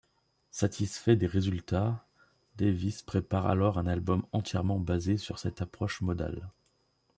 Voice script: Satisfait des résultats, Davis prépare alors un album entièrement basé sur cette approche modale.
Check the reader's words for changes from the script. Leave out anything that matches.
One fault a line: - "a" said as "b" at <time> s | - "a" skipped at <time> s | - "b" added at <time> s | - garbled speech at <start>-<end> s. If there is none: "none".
none